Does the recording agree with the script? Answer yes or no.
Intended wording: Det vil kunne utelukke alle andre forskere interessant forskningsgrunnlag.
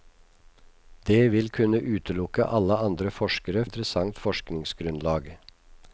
yes